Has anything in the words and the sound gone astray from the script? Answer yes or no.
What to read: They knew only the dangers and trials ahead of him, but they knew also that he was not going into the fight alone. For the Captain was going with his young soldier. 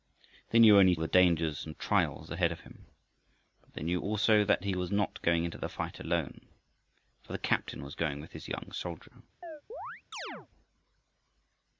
yes